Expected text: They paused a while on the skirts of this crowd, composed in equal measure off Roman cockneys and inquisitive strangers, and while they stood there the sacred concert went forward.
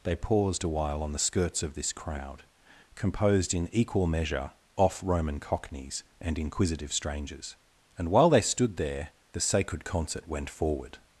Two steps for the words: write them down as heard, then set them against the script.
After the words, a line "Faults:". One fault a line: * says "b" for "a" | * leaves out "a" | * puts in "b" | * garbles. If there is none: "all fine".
They paused a while on the skirts of this crowd, composed in equal measure off Roman cockneys and inquisitive strangers, and while they stood there the sacred concert went forward.
Faults:
all fine